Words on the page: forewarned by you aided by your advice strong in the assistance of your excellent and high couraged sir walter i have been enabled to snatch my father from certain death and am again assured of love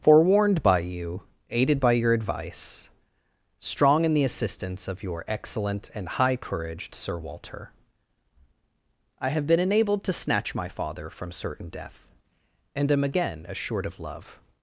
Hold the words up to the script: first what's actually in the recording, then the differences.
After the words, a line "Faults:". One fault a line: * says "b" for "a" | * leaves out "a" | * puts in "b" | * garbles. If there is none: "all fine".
forewarned by you aided by your advice strong in the assistance of your excellent and high couraged sir walter i have been enabled to snatch my father from certain death and am again assured of love
Faults:
all fine